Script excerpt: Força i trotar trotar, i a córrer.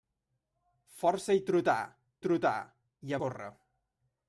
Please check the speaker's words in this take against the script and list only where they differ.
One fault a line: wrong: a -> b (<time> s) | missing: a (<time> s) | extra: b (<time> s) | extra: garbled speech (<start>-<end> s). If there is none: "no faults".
no faults